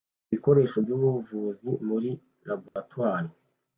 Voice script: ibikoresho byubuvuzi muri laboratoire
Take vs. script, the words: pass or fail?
pass